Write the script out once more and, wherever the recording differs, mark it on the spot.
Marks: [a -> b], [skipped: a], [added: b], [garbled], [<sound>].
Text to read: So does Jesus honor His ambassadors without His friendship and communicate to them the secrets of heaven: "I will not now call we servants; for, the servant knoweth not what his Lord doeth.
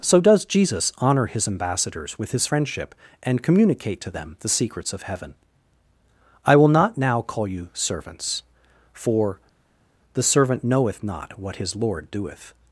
So does Jesus honor His ambassadors [without -> with] His friendship and communicate to them the secrets of heaven: "I will not now call [we -> you] servants; for, the servant knoweth not what his Lord doeth.